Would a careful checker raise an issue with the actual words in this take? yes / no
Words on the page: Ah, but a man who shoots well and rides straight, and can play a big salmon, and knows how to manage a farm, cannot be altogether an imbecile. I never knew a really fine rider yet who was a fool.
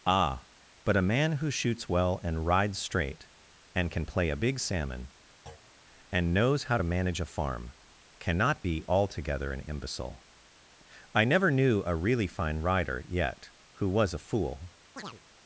no